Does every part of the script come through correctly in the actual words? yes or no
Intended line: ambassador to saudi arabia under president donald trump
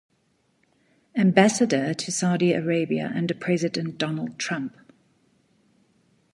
yes